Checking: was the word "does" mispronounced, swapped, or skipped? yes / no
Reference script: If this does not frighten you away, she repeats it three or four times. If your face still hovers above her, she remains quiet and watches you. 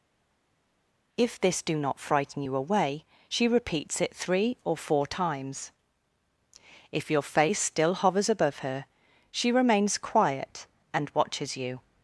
yes